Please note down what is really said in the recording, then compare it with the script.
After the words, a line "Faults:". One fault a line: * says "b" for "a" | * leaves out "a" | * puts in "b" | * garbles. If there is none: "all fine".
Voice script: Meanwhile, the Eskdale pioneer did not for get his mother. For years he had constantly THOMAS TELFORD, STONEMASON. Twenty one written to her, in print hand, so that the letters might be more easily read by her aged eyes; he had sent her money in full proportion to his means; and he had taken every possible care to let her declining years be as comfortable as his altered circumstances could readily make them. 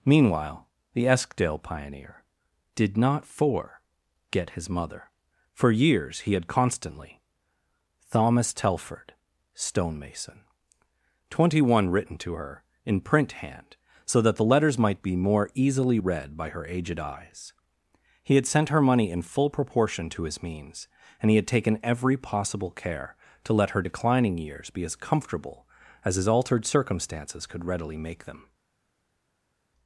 Meanwhile, the Eskdale pioneer did not for get his mother. For years he had constantly THOMAS TELFORD, STONEMASON. Twenty one written to her, in print hand, so that the letters might be more easily read by her aged eyes; he had sent her money in full proportion to his means; and he had taken every possible care to let her declining years be as comfortable as his altered circumstances could readily make them.
Faults:
all fine